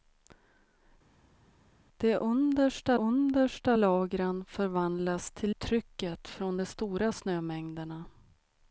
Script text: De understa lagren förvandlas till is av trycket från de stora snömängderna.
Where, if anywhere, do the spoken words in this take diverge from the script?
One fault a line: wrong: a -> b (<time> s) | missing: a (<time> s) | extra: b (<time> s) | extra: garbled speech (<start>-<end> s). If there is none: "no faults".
extra: understa (2.9 s)
missing: is av (5.6 s)